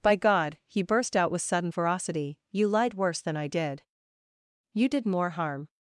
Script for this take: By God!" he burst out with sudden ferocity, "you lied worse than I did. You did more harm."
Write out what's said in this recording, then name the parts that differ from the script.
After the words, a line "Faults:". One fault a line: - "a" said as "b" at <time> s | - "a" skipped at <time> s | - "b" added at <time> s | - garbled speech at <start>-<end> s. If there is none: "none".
By God!" he burst out with sudden ferocity, "you lied worse than I did. You did more harm."
Faults:
none